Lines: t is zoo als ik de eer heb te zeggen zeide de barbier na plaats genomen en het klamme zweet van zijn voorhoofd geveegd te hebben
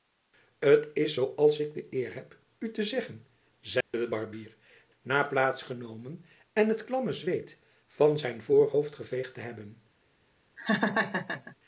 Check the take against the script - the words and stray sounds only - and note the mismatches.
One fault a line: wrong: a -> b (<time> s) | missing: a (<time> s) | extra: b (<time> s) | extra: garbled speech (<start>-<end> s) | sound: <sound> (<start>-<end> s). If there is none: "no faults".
extra: u (2.6 s)
sound: dropout (3.8-3.9 s)
sound: laugh (10.6-11.6 s)